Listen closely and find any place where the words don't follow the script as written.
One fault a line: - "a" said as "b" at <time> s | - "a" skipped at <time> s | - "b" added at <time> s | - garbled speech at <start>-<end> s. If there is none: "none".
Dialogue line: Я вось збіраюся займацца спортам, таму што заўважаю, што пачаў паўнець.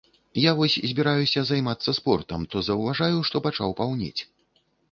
- "таму" skipped at 2.5 s